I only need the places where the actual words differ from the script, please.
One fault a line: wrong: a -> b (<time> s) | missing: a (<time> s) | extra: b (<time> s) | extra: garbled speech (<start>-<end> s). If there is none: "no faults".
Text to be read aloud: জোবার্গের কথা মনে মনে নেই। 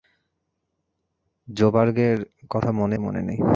no faults